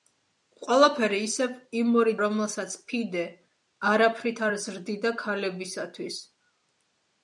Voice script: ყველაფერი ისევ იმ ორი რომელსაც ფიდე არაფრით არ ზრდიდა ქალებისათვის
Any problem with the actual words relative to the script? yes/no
no